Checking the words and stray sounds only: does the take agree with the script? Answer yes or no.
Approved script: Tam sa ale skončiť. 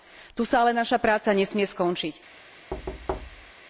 no